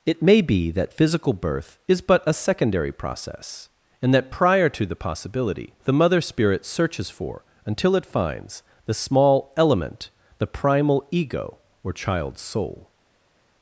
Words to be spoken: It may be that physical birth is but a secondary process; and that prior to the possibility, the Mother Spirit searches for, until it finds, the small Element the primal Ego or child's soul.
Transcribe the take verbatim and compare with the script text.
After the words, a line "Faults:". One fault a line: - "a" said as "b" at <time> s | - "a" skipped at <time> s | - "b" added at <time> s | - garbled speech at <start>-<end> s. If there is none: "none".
It may be that physical birth is but a secondary process; and that prior to the possibility, the Mother Spirit searches for, until it finds, the small Element the primal Ego or child's soul.
Faults:
none